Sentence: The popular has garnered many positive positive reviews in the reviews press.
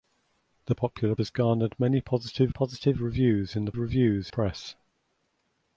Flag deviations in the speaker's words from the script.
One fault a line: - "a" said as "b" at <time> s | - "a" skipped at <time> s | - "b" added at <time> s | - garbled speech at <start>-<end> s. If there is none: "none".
none